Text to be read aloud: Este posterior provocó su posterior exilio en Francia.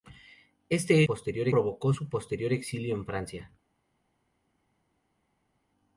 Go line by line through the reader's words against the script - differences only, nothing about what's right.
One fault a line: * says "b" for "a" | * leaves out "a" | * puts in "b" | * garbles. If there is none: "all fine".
all fine